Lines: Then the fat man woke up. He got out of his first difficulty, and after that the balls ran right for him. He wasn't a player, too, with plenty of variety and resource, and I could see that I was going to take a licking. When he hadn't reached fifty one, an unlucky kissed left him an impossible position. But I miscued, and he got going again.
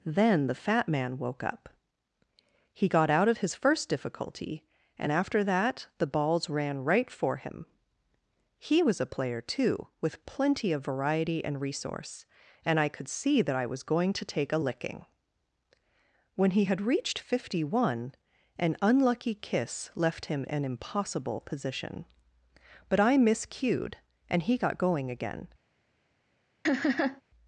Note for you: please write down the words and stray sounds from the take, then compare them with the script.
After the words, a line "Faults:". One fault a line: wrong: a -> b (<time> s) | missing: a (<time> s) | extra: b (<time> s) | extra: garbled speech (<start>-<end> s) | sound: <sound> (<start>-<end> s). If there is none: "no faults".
Then the fat man woke up. He got out of his first difficulty, and after that the balls ran right for him. He was a player, too, with plenty of variety and resource, and I could see that I was going to take a licking. When he had reached fifty one, an unlucky kiss left him an impossible position. But I miscued, and he got going again.
Faults:
wrong: wasn't -> was (8.8 s)
wrong: hadn't -> had (16.6 s)
wrong: kissed -> kiss (19.4 s)
sound: laugh (26.6-27.2 s)